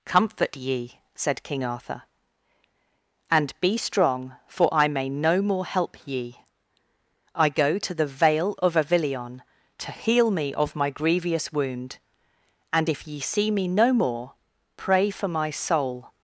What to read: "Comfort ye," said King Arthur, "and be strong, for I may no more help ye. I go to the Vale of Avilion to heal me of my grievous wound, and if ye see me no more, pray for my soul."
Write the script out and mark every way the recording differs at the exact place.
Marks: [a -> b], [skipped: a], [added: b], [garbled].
"Comfort ye," said King Arthur, "and be strong, for I may no more help ye. I go to the Vale of Avilion to heal me of my grievous wound, and if ye see me no more, pray for my soul."